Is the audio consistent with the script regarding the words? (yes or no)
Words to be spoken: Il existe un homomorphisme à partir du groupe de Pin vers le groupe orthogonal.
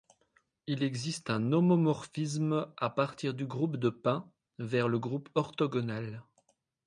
yes